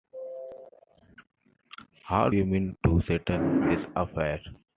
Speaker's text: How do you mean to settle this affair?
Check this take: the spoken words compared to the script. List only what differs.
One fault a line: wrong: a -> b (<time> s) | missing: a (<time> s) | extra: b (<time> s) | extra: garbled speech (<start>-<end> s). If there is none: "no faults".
missing: do (2.3 s)